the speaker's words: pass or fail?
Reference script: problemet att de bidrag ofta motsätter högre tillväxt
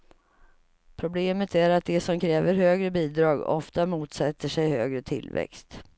fail